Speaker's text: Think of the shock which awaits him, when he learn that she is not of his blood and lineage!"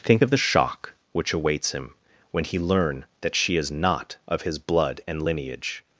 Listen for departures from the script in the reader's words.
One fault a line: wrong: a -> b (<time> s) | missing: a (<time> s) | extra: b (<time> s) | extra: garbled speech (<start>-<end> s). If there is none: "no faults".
no faults